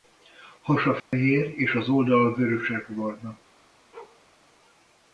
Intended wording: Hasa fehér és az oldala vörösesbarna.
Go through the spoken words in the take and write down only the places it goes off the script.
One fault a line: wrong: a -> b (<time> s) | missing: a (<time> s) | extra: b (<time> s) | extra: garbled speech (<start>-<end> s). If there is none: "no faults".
no faults